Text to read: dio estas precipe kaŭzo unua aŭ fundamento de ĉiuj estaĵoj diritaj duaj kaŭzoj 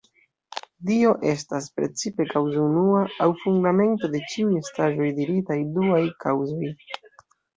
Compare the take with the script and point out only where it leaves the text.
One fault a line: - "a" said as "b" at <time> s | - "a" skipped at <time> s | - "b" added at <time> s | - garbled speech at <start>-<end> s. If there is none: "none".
none